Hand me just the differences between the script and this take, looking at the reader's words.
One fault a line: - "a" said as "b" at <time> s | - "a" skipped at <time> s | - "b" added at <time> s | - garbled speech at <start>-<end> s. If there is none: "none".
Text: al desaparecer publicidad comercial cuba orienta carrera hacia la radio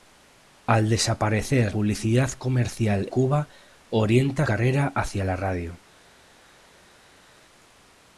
none